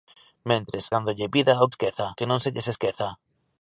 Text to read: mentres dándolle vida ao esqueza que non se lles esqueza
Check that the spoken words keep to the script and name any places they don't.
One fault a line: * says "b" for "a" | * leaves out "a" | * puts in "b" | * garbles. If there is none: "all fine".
all fine